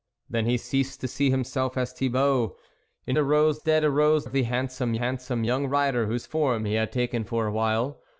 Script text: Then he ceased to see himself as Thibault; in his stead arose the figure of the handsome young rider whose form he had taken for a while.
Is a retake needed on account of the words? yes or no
yes